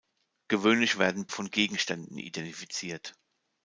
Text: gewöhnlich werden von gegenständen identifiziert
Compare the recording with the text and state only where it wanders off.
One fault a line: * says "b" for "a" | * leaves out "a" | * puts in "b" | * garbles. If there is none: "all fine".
all fine